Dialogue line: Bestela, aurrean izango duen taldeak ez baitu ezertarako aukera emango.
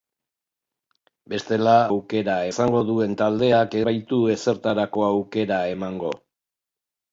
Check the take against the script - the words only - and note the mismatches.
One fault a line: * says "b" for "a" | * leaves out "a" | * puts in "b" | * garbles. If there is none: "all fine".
* says "aukera" for "aurrean"
* leaves out "ez"